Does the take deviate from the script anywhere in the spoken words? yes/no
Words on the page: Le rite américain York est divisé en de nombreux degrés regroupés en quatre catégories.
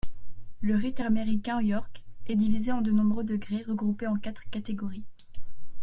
no